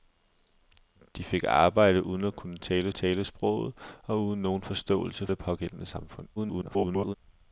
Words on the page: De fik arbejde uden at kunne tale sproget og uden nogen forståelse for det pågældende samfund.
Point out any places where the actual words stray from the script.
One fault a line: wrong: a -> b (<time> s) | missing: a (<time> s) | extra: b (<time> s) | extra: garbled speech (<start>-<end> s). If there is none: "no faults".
extra: tale (2.9 s)
missing: for (5.3 s)
extra: garbled speech (6.4-7.2 s)